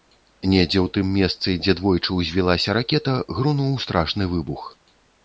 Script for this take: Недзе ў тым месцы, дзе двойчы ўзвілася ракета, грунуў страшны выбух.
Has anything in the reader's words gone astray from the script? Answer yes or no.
no